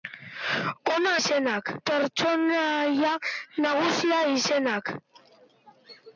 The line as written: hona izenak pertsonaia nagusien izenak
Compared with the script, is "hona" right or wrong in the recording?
right